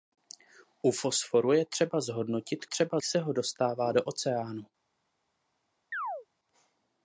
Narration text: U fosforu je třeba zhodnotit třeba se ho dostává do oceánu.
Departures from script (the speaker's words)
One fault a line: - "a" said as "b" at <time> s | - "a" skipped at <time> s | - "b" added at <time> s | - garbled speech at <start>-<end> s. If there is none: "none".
none